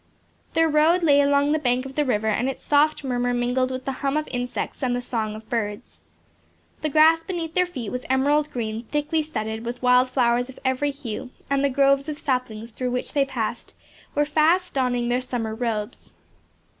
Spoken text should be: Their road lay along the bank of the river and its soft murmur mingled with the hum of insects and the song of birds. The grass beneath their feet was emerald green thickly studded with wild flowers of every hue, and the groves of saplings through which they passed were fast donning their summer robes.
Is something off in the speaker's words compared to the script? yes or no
no